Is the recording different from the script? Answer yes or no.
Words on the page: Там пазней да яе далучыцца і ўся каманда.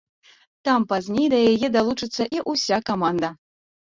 no